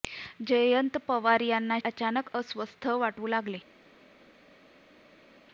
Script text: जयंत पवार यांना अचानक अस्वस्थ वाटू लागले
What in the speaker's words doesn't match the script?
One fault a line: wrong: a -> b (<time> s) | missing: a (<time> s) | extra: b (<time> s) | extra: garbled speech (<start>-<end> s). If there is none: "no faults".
no faults